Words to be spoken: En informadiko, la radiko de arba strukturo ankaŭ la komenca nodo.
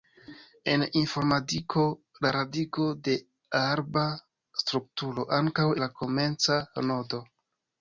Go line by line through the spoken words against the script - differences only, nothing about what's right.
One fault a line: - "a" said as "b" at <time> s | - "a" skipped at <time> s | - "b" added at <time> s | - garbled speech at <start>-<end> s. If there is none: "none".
none